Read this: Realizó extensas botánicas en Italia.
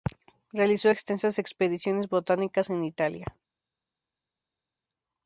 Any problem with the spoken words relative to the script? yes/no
yes